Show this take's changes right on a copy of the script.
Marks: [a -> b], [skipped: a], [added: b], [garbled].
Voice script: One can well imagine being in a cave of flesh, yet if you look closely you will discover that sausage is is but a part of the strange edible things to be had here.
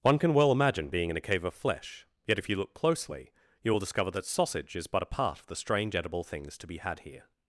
One can well imagine being in a cave of flesh, yet if you look closely you will discover that sausage is [skipped: is] but a part of the strange edible things to be had here.